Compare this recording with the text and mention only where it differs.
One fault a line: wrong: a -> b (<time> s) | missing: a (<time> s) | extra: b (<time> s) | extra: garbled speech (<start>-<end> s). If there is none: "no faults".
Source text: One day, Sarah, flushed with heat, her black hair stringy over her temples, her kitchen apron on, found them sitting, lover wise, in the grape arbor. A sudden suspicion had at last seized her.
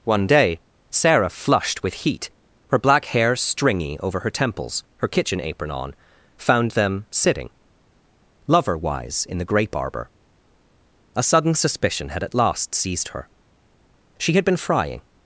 extra: She had been frying (14.2 s)